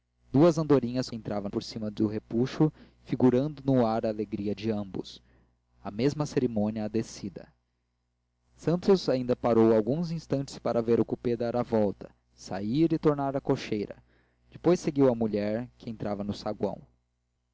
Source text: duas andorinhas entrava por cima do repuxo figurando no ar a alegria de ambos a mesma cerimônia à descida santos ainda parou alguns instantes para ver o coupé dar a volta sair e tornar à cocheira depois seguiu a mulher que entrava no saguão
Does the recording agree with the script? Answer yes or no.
yes